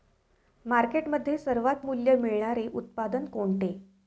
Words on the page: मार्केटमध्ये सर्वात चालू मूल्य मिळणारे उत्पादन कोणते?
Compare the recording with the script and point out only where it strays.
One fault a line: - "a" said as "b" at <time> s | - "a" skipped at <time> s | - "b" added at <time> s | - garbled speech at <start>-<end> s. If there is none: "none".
- "चालू" skipped at 1.9 s